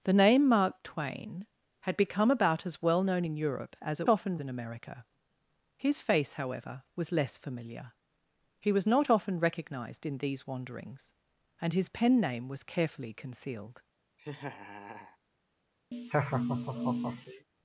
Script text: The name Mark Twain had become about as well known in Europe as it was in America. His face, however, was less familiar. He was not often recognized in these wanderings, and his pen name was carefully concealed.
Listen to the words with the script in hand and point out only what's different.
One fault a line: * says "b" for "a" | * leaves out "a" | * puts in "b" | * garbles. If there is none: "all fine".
* says "often" for "was"